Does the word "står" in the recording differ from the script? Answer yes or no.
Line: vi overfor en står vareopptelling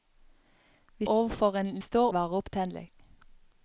no